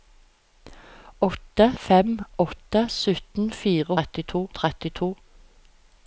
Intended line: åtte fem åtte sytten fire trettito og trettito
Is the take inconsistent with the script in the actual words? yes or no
no